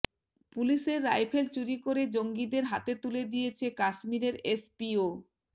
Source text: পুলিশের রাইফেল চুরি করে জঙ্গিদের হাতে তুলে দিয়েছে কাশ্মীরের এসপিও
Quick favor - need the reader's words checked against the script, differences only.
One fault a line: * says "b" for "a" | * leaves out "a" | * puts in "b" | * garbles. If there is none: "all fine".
all fine